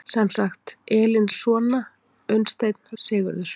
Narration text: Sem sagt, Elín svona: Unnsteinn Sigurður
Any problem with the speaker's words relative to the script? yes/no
no